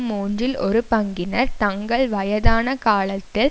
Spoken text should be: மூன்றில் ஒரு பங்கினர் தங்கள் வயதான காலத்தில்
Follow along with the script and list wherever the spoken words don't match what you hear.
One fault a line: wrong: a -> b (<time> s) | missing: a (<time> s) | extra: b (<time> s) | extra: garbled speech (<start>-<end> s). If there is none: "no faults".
no faults